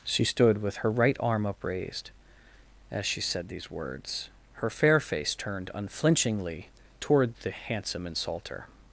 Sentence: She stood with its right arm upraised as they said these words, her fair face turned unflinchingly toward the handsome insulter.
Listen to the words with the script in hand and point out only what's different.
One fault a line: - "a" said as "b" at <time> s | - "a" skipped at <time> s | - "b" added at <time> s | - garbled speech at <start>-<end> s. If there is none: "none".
- "its" said as "her" at 0.8 s
- "they" said as "she" at 3.0 s